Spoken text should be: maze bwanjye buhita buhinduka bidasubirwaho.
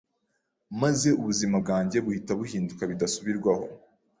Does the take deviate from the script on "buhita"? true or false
false